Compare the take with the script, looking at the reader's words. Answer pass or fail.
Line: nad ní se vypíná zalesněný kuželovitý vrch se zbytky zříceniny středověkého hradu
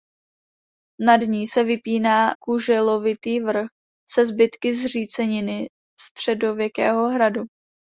fail